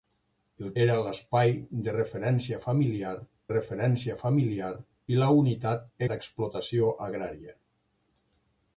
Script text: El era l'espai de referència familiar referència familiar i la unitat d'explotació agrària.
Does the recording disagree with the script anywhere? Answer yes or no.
no